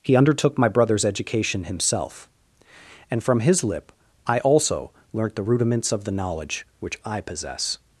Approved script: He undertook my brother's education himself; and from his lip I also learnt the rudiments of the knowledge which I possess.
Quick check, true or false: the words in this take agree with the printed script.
true